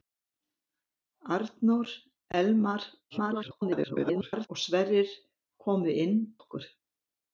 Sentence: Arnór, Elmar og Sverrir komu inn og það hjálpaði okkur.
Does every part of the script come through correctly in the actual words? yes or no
no